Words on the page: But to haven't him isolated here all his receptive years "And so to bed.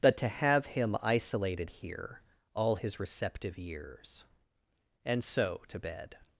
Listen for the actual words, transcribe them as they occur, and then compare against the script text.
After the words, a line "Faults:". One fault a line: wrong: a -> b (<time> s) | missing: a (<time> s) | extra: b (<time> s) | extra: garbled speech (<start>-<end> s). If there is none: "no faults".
But to have him isolated here all his receptive years "And so to bed.
Faults:
wrong: haven't -> have (0.3 s)